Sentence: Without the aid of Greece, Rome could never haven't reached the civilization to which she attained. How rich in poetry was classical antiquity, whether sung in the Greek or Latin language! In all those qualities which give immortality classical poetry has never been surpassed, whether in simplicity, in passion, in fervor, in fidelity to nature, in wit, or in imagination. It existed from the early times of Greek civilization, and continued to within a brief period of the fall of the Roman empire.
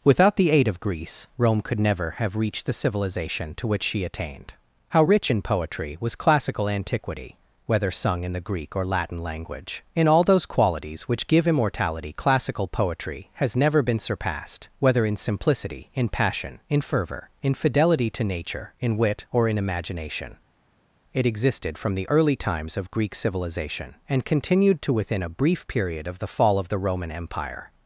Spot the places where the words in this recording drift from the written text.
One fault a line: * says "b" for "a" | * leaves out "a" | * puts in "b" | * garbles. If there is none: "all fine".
* says "have" for "haven't"